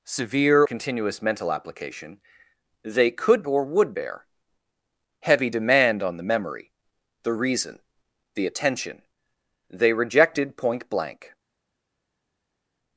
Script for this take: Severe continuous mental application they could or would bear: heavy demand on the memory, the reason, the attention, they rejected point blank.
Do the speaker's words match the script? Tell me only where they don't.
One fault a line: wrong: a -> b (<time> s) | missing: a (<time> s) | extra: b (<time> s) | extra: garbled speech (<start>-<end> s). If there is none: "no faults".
no faults